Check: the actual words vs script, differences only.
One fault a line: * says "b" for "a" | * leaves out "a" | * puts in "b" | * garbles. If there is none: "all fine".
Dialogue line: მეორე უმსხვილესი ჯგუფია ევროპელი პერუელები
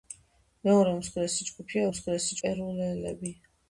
* says "უმსხვილესი" for "ევროპელი"